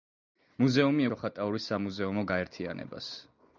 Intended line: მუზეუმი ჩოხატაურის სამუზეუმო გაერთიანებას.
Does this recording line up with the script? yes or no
yes